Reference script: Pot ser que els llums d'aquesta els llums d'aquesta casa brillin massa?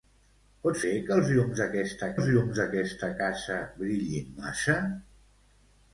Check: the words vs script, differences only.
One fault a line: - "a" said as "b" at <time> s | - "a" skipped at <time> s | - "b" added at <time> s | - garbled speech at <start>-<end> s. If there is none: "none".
none